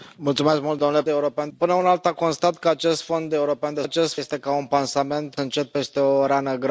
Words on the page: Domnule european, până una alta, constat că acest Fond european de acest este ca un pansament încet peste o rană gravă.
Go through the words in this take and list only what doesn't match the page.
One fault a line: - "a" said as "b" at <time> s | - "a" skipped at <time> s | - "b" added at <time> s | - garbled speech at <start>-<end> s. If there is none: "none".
none